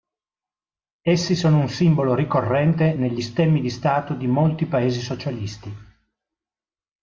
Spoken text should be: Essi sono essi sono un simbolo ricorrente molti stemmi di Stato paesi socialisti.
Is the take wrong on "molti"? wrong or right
wrong